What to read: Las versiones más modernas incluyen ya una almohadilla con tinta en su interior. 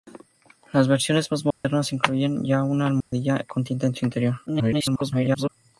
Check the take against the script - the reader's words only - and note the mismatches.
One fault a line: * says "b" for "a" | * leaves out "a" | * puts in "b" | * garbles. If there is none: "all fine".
* garbles